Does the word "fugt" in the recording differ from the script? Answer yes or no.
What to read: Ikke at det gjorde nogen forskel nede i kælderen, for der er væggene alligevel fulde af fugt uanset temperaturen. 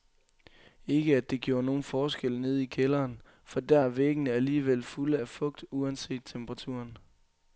no